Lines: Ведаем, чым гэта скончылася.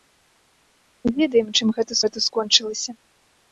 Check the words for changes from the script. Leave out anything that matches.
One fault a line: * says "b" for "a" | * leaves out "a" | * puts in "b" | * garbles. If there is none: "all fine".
* puts in "гэта"